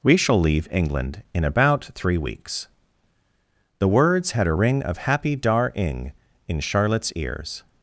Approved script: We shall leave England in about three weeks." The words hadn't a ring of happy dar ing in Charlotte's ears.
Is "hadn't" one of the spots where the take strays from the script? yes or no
yes